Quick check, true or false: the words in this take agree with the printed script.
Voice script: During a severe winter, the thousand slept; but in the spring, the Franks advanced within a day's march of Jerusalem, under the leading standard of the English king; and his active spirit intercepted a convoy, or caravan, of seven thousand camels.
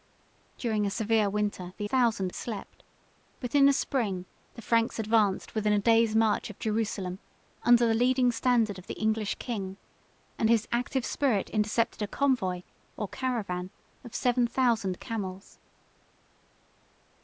true